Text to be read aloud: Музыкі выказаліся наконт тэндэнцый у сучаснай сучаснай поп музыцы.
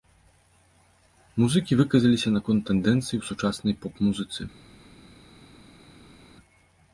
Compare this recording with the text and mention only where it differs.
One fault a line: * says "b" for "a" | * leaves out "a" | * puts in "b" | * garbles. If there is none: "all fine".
* leaves out "сучаснай"